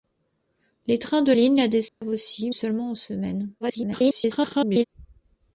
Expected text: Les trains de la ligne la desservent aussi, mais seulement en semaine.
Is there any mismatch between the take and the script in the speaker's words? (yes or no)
yes